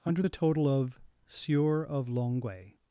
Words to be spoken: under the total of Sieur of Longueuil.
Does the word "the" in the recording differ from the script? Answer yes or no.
no